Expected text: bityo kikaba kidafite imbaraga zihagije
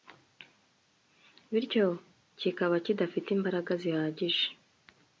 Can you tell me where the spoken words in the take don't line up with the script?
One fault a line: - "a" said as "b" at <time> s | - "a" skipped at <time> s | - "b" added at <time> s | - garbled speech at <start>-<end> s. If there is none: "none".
none